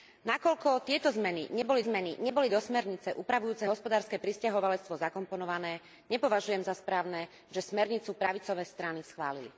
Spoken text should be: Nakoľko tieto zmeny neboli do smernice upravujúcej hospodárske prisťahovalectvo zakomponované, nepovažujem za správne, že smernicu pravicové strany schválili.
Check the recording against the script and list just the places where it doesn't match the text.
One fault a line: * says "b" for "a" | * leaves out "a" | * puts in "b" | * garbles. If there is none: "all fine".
* puts in "zmeny neboli"